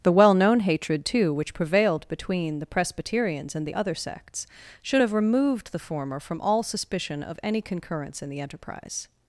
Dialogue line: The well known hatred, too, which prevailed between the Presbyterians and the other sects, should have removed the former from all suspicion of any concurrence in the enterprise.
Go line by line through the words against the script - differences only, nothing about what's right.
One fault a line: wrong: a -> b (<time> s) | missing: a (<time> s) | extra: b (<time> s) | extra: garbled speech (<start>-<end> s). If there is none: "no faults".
no faults